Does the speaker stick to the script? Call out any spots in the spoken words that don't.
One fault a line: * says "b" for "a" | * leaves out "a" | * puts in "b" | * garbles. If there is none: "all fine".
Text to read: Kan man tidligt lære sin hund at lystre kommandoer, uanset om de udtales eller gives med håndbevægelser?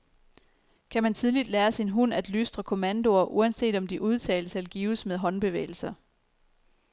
all fine